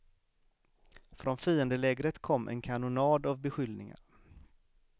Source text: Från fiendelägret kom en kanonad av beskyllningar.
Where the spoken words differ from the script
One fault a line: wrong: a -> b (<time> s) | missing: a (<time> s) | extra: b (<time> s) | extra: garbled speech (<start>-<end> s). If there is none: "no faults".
no faults